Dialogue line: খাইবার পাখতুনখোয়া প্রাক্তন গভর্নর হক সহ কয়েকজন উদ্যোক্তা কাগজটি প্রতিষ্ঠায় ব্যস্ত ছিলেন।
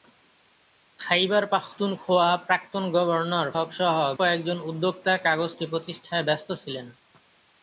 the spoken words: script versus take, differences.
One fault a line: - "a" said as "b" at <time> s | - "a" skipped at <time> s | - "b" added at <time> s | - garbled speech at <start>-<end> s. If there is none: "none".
none